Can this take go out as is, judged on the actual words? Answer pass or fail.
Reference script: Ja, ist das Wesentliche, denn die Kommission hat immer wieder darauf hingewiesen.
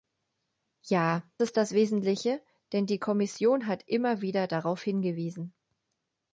pass